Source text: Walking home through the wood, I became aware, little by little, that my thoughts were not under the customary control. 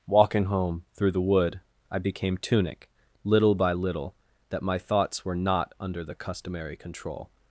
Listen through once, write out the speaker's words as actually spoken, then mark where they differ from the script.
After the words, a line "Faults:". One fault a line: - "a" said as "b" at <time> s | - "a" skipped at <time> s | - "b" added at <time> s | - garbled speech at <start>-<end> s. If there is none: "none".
Walking home through the wood, I became tunic, little by little, that my thoughts were not under the customary control.
Faults:
- "aware" said as "tunic" at 2.4 s